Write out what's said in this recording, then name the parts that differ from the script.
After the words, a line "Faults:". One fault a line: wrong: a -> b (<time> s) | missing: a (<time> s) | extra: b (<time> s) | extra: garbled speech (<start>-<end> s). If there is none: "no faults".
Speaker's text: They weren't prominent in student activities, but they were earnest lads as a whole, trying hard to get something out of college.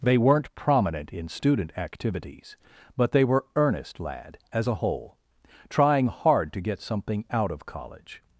They weren't prominent in student activities, but they were earnest lad as a whole, trying hard to get something out of college.
Faults:
wrong: lads -> lad (4.0 s)